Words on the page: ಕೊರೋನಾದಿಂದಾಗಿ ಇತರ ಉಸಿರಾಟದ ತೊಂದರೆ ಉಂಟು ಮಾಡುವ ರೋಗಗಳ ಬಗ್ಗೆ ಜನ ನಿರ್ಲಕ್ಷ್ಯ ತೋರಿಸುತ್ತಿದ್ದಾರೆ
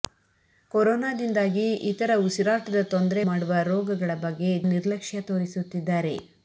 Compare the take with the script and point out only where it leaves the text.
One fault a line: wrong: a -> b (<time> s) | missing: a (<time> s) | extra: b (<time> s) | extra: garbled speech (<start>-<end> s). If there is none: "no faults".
missing: ಉಂಟು (3.2 s)
missing: ಜನ (4.5 s)